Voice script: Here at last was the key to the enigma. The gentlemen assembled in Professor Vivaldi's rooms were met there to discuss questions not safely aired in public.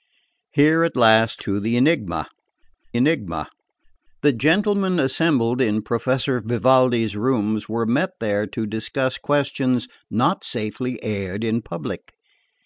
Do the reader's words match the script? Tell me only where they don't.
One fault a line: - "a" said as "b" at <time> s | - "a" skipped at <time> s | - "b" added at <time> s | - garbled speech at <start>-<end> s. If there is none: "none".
- "was" said as "to" at 1.4 s
- "key to the" said as "enigma" at 1.8 s